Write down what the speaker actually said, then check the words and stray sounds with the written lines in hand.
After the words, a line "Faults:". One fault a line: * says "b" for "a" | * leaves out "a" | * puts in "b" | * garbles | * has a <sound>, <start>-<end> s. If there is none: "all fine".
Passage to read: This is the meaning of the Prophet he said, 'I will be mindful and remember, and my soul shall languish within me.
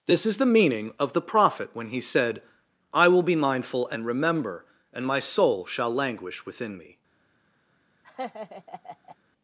This is the meaning of the Prophet when he said, 'I will be mindful and remember, and my soul shall languish within me.
Faults:
* puts in "when"
* has a laugh, 8.0-9.2 s